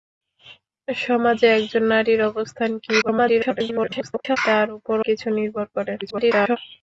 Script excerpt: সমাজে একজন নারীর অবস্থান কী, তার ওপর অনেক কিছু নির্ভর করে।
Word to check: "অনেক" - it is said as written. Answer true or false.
false